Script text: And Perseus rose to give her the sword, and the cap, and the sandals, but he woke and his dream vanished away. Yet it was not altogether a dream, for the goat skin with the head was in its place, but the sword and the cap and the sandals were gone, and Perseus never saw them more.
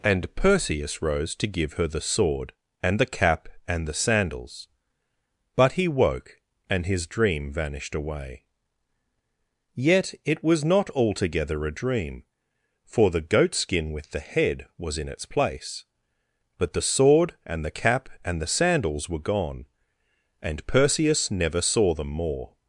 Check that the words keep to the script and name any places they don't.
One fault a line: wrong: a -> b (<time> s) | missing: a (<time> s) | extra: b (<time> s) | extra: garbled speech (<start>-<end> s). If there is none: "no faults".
no faults